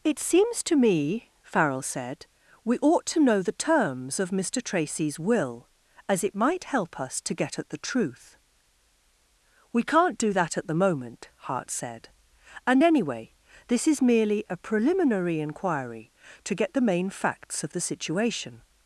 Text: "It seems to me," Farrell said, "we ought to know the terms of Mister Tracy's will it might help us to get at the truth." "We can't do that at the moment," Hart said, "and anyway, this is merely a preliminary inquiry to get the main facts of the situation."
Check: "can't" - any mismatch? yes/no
no